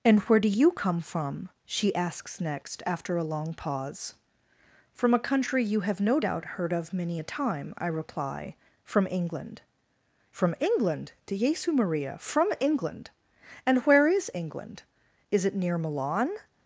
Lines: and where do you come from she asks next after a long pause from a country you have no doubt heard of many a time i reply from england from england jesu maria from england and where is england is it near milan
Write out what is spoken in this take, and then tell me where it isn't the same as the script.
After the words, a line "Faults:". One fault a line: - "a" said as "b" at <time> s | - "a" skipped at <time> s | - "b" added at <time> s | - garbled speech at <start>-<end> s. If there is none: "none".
and where do you come from she asks next after a long pause from a country you have no doubt heard of many a time i reply from england from england de jesu maria from england and where is england is it near milan
Faults:
- "de" added at 11.2 s